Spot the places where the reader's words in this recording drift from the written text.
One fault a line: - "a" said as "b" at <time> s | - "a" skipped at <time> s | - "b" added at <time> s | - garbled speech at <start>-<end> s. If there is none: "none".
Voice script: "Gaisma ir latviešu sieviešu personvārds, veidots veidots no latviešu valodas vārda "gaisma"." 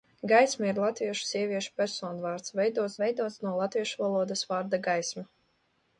none